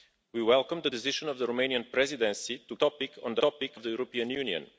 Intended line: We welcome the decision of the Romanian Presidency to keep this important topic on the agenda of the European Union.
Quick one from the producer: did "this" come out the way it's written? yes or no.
no